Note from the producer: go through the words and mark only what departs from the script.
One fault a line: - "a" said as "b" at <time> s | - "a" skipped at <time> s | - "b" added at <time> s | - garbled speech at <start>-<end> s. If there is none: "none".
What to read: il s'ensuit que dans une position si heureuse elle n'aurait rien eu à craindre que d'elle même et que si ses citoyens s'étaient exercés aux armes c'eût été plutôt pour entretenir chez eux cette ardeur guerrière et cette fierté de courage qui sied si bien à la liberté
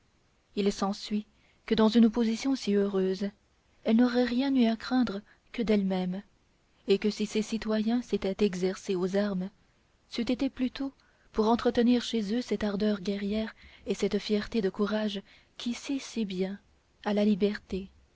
none